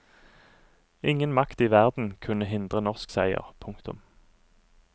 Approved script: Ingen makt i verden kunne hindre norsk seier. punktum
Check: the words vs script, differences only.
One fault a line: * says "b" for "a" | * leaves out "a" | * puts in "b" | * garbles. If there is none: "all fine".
all fine